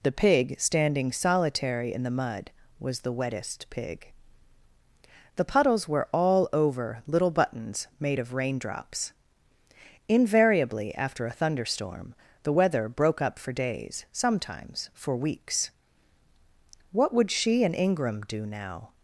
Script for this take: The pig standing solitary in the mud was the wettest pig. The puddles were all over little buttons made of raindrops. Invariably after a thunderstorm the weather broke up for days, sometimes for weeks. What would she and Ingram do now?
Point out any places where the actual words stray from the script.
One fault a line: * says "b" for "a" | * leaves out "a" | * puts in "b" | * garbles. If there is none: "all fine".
all fine